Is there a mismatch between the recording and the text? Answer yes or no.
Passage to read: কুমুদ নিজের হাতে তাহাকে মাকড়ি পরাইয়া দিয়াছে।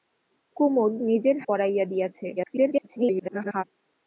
yes